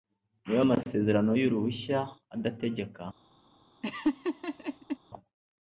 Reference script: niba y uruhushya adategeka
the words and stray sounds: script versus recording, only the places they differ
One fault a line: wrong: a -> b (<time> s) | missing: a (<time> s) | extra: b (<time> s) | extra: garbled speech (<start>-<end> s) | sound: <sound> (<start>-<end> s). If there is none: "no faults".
extra: amasezerano (0.7 s)
sound: laugh (3.8-5.0 s)